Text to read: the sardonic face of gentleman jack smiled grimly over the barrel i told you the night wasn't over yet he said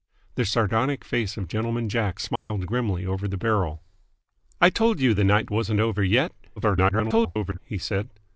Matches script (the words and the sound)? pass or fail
fail